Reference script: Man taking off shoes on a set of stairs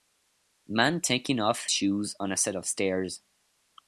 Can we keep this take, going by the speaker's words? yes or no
yes